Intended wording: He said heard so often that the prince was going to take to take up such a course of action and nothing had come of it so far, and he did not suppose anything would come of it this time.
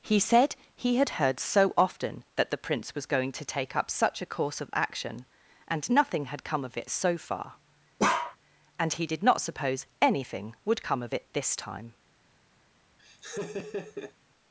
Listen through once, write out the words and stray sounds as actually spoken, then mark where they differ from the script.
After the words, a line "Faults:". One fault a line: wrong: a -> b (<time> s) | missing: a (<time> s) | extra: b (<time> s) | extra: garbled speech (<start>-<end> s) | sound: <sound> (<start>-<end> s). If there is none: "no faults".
He said he had heard so often that the prince was going to take up such a course of action and nothing had come of it so far, and he did not suppose anything would come of it this time.
Faults:
extra: he had (0.8 s)
missing: to take (3.8 s)
sound: bark (8.0-8.4 s)
sound: laugh (13.0-14.1 s)